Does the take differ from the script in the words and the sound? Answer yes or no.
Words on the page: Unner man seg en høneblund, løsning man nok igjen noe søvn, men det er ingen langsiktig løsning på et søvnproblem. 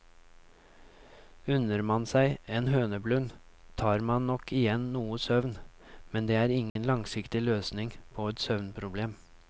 yes